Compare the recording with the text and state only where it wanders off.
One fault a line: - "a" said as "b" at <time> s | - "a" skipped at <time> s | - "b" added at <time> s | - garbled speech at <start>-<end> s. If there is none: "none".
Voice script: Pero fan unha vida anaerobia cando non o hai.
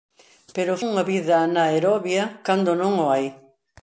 - "fan" skipped at 0.7 s